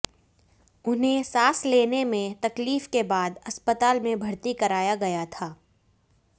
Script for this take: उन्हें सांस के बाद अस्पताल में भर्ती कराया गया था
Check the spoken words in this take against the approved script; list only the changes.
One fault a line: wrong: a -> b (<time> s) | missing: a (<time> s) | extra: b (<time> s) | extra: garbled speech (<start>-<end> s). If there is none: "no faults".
extra: लेने में तकलीफ (1.7 s)